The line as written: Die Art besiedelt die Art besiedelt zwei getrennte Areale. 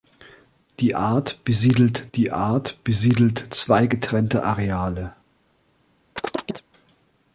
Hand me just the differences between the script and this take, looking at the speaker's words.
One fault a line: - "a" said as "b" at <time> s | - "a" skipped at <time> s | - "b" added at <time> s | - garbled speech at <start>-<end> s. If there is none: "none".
none